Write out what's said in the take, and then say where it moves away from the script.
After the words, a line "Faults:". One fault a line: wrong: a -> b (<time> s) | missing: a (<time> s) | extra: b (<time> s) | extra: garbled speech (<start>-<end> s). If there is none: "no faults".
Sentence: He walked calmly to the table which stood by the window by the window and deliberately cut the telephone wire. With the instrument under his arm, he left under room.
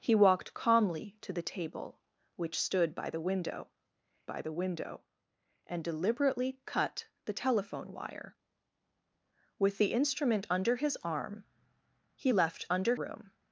He walked calmly to the table which stood by the window by the window and deliberately cut the telephone wire. With the instrument under his arm, he left under room.
Faults:
no faults